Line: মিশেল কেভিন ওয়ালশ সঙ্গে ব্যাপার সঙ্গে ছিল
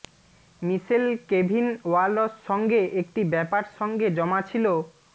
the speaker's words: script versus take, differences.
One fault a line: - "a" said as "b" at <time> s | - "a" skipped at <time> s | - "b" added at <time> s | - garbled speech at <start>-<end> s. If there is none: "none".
- "একটি" added at 3.0 s
- "জমা" added at 4.2 s